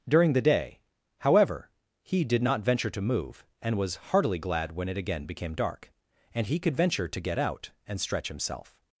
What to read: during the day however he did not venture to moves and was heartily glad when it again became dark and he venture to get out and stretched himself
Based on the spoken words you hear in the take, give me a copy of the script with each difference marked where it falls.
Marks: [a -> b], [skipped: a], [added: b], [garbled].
during the day however he did not venture to [moves -> move] and was heartily glad when it again became dark and he [added: could] venture to get out and [stretched -> stretch] himself